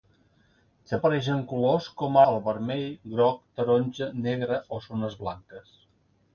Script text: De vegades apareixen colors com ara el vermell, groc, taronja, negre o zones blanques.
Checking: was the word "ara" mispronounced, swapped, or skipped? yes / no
yes